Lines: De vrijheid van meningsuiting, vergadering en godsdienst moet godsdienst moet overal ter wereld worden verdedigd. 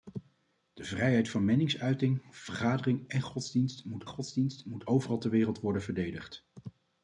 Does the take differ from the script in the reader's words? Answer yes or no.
no